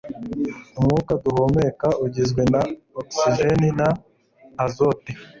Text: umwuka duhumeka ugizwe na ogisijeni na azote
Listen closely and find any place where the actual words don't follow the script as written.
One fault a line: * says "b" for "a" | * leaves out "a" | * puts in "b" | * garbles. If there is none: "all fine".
all fine